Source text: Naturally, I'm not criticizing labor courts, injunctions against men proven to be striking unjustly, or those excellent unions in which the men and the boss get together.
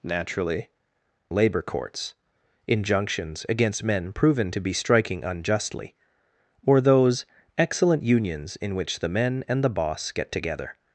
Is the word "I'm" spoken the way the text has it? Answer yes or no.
no